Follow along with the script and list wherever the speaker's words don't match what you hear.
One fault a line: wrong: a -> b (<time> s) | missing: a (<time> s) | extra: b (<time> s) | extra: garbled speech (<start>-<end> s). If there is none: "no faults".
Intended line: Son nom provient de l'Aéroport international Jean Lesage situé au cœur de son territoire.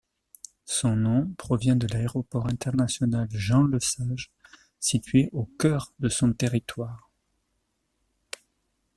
no faults